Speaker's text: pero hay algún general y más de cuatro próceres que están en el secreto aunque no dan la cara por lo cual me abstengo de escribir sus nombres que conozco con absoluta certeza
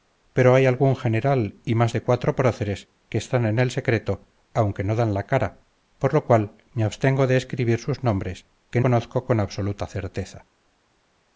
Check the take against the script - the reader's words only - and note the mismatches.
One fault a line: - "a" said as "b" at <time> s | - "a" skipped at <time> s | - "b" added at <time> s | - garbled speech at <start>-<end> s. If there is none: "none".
none